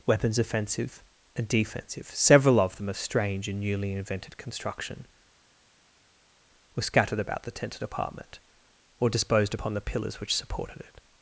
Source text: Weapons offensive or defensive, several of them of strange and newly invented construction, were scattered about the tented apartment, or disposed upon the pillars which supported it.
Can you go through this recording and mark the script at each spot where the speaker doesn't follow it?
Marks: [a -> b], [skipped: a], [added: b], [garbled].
Weapons offensive [or -> and] defensive, several of them of strange and newly invented construction, were scattered about the tented apartment, or disposed upon the pillars which supported it.